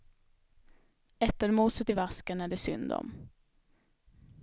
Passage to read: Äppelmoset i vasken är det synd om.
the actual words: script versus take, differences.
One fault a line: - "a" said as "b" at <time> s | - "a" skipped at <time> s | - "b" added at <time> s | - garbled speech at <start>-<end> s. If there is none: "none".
none